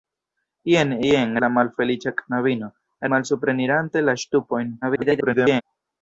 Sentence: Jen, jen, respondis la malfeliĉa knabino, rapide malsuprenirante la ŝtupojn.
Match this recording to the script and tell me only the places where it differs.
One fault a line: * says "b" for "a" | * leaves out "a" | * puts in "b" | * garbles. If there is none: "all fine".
* leaves out "respondis"
* leaves out "rapide"
* garbles